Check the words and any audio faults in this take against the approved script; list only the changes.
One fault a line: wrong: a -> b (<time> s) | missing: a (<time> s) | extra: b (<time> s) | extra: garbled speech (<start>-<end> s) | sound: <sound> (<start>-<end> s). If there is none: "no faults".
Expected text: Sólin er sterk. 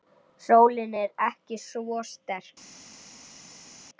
extra: svo (1.7 s)